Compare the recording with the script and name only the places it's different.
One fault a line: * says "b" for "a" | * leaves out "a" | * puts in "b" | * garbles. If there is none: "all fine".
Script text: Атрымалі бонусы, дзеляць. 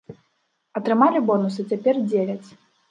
* puts in "цяпер"